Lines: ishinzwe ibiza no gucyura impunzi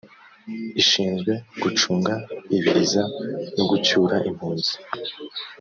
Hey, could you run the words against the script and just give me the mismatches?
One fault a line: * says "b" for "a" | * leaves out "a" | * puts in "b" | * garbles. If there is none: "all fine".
* puts in "gucunga"